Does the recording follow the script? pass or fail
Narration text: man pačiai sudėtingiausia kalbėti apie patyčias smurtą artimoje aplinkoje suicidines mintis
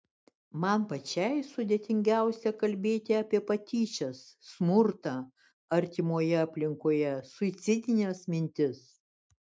pass